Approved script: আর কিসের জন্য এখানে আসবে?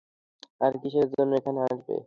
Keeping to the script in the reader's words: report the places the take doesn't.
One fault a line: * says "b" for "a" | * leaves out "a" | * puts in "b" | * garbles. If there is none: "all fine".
all fine